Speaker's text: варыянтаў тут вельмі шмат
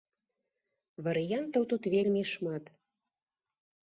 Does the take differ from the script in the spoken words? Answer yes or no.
no